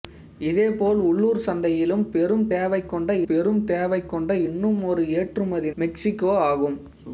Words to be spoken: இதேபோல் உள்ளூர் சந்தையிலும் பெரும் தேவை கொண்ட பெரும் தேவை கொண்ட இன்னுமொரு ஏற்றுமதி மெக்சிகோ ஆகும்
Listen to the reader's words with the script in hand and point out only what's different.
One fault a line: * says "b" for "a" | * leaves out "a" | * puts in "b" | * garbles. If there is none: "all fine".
all fine